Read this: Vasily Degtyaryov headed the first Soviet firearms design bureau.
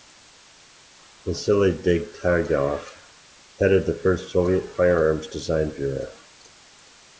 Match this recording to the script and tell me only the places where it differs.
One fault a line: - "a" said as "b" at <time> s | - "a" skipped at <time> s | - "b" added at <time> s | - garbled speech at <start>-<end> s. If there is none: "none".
none